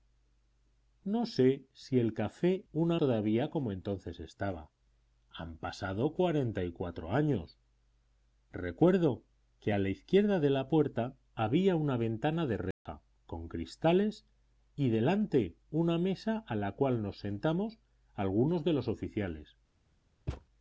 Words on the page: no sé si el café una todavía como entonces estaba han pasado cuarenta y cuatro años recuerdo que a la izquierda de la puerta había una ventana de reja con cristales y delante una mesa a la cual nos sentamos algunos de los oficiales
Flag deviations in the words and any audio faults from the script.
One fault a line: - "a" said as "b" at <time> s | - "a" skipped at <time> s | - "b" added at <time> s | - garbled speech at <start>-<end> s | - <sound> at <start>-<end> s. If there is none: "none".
- dropout at 12.7-12.9 s
- thud at 20.3-20.5 s